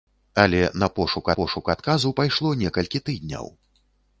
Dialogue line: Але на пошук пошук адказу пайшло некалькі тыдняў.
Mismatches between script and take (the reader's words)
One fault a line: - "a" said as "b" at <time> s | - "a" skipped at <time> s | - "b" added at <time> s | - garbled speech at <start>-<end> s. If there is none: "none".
none